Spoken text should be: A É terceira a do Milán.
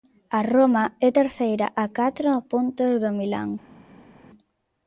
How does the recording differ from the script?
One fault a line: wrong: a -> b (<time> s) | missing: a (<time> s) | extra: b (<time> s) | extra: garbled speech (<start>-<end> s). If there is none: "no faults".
extra: Roma (0.5 s)
extra: catro puntos (2.0 s)